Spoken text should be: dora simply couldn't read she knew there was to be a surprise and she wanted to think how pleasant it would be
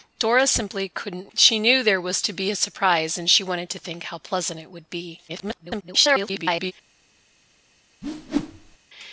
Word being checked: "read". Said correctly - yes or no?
no